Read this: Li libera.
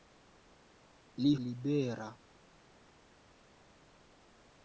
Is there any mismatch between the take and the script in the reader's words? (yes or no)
no